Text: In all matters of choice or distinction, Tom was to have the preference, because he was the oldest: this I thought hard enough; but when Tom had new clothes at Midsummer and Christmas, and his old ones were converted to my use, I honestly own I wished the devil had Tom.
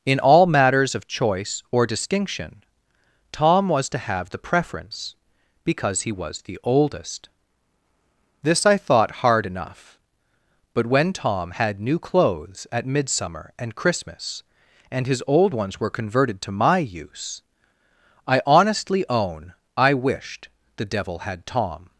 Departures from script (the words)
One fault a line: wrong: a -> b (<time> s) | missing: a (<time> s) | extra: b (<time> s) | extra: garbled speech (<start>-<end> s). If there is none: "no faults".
no faults